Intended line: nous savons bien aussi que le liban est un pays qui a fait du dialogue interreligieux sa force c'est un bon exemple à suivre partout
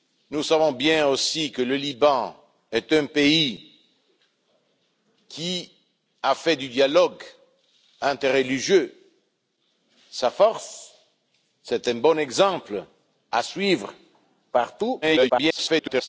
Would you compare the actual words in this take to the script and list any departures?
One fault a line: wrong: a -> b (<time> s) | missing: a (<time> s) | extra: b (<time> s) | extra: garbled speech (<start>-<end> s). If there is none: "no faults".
extra: garbled speech (15.0-16.1 s)